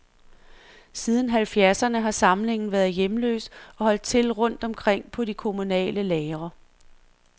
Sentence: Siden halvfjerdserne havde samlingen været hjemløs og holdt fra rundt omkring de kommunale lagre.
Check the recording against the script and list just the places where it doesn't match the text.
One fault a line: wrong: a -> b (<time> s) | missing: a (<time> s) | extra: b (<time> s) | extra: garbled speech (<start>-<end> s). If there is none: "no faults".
wrong: havde -> har (2.0 s)
wrong: fra -> til (4.0 s)
extra: på (5.1 s)